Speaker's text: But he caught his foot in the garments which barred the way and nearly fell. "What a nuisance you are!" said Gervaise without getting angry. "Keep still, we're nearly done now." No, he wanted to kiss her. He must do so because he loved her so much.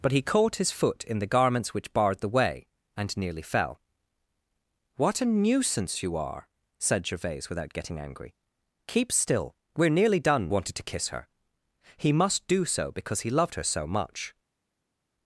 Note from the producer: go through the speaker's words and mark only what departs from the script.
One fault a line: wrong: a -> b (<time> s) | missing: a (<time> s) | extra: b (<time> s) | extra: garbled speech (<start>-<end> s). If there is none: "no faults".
missing: now No he (10.5 s)